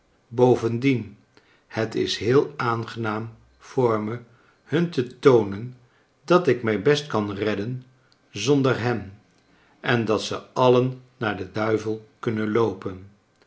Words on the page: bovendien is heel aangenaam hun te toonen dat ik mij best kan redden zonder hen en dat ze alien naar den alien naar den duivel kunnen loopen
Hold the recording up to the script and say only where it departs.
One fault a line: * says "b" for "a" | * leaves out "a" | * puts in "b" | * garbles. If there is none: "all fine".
* puts in "het"
* puts in "voor me"
* leaves out "alien naar den"